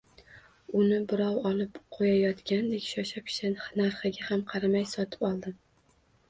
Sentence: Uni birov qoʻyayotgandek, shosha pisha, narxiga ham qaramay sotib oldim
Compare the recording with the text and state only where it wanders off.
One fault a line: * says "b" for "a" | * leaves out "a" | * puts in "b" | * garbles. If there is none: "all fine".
* puts in "olib"